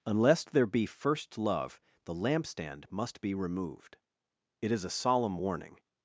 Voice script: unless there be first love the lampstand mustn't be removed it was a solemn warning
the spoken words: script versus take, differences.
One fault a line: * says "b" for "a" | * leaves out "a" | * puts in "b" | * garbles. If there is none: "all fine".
* says "must" for "mustn't"
* says "is" for "was"